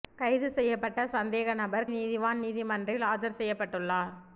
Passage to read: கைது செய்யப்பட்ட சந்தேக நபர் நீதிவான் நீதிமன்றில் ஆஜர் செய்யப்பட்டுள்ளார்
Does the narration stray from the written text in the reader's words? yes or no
no